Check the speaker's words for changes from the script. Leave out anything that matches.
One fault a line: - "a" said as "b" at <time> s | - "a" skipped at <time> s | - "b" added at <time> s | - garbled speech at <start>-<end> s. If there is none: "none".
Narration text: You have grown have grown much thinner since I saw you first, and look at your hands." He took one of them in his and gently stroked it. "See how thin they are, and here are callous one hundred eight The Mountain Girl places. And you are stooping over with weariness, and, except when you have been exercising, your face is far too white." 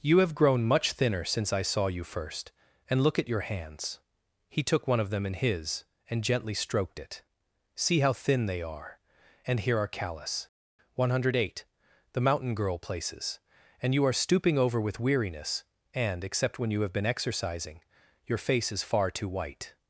- "have grown" skipped at 0.6 s